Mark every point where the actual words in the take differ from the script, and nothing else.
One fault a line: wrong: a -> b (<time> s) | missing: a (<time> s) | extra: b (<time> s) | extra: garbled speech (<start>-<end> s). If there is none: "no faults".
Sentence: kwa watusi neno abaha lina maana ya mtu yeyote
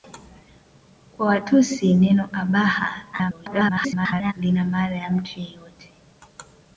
extra: garbled speech (3.1-4.3 s)